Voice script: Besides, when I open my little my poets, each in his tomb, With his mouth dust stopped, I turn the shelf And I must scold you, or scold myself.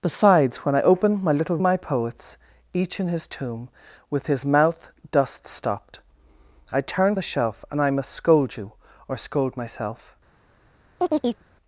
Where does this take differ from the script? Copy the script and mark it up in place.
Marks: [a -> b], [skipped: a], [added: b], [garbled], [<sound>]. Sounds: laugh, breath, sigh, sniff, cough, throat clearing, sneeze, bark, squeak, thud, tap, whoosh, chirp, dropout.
Besides, when I open my little my poets, each in his tomb, With his mouth dust stopped, I turn the shelf And I must scold you, or scold myself. [chirp]